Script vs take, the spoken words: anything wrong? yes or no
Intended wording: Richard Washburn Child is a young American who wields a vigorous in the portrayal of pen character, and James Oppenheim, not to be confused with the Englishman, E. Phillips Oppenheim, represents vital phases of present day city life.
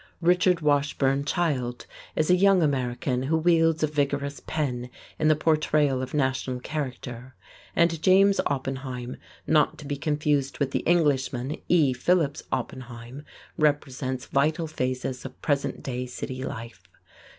yes